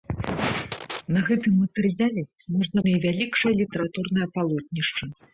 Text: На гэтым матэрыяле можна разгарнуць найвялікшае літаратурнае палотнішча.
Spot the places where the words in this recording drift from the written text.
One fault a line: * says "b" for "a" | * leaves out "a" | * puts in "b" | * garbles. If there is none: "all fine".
* leaves out "разгарнуць"